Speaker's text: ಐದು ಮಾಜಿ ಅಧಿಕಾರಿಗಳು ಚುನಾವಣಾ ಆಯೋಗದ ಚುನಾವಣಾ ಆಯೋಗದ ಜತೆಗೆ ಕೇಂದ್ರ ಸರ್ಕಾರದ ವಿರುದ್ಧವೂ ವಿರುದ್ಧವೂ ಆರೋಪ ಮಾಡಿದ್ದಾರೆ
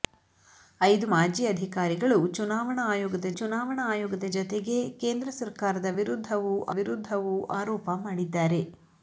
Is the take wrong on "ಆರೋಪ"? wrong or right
right